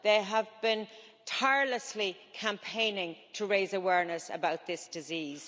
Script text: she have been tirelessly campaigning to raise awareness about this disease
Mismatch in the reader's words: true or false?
true